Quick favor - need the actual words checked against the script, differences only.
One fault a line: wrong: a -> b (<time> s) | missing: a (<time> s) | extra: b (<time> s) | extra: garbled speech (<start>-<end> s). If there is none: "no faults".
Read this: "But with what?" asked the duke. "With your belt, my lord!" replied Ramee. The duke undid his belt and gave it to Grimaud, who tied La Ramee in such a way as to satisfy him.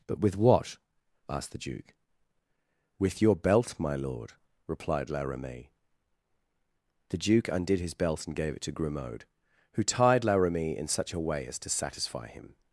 extra: La (5.1 s)